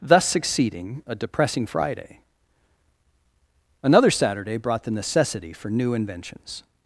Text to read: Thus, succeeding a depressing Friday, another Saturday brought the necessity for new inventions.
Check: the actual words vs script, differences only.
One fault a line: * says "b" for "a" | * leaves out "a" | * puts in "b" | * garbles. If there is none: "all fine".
all fine